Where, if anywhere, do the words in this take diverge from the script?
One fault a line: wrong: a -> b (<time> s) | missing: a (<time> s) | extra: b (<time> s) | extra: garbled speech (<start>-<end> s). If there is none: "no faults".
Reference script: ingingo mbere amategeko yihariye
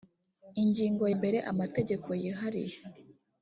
no faults